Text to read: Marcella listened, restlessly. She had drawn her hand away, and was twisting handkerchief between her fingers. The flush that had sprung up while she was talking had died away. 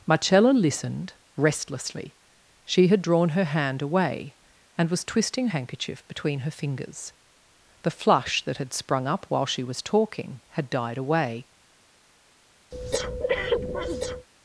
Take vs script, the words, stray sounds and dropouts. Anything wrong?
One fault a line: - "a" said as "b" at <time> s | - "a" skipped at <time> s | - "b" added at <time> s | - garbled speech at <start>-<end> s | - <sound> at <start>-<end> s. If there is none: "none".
- breath at 12.7-14.3 s